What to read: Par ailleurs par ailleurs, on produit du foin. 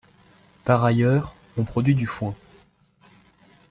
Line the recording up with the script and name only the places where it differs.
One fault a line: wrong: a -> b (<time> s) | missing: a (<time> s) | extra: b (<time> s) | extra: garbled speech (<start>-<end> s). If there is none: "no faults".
missing: par ailleurs (1.4 s)